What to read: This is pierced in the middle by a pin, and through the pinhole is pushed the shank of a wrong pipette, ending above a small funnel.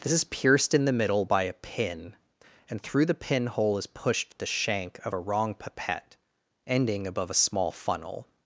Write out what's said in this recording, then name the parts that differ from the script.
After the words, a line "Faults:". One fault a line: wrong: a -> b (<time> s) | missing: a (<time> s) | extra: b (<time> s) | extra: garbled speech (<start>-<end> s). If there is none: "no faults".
This is pierced in the middle by a pin, and through the pinhole is pushed the shank of a wrong pipette, ending above a small funnel.
Faults:
no faults